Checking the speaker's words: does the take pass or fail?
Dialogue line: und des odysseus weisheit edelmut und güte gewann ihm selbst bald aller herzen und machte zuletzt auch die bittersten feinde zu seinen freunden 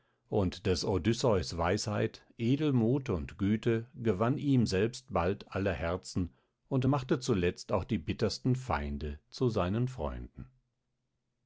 pass